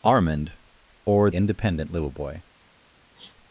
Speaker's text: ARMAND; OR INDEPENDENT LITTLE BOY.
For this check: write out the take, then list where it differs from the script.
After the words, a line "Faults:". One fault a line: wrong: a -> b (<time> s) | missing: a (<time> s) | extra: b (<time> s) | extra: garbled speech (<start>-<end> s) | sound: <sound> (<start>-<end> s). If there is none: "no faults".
ARMAND; OR INDEPENDENT LITTLE BOY.
Faults:
sound: sniff (3.2-3.3 s)